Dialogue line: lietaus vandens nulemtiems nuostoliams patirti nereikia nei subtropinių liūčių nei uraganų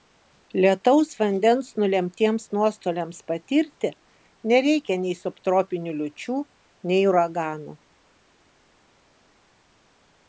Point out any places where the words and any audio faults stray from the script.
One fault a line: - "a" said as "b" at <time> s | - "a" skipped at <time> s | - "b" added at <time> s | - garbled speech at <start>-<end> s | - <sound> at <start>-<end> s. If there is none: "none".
none